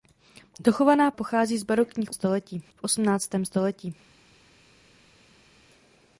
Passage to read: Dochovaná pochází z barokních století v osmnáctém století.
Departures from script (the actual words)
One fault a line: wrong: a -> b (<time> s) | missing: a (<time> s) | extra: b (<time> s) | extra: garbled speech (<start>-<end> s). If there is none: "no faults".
no faults